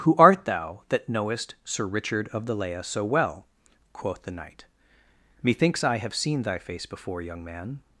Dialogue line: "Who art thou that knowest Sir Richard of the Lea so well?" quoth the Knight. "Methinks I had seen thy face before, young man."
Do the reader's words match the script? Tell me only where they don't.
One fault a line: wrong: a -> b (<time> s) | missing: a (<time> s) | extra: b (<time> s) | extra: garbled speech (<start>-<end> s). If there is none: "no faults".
wrong: had -> have (6.0 s)